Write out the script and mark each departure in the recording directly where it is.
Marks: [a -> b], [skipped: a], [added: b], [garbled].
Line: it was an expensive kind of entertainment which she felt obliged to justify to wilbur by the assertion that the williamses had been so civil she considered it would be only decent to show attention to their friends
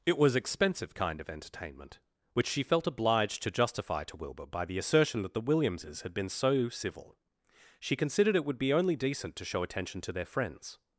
it was [skipped: an] expensive kind of entertainment which she felt obliged to justify to wilbur by the assertion that the williamses had been so civil she considered it would be only decent to show attention to their friends